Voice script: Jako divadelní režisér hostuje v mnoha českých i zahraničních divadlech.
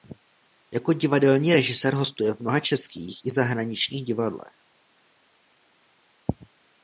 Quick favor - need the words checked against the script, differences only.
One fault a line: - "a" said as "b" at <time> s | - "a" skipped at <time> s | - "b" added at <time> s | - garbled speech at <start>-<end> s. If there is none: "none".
none